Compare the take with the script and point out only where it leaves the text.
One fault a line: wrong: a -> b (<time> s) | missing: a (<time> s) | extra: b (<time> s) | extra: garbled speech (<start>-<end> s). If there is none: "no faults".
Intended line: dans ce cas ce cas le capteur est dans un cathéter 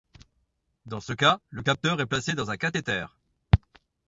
missing: ce cas (1.4 s)
extra: placé (2.1 s)